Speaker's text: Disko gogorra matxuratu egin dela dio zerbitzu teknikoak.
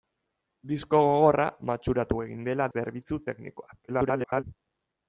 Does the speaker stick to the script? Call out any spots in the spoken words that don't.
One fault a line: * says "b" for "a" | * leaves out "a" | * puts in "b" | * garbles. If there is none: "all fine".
* leaves out "dio"
* garbles